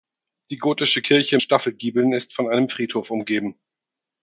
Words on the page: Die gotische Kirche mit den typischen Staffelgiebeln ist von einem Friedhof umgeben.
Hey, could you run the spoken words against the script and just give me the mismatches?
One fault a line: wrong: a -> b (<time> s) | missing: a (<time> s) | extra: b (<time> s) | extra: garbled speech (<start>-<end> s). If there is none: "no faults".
missing: mit den typischen (1.4 s)